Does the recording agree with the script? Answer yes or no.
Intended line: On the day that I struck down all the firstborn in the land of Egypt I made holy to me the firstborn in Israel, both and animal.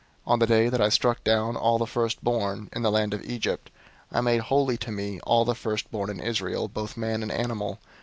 no